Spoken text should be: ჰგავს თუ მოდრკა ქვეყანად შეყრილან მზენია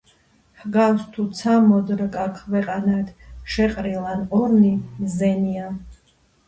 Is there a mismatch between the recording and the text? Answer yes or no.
yes